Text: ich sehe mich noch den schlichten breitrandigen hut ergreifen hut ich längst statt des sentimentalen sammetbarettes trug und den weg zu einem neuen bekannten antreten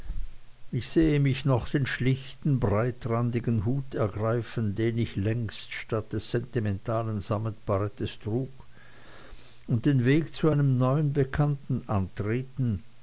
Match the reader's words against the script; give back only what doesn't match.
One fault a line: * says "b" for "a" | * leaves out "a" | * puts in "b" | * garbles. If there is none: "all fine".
* says "den" for "hut"